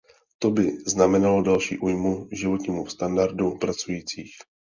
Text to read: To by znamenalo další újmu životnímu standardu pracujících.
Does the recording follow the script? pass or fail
pass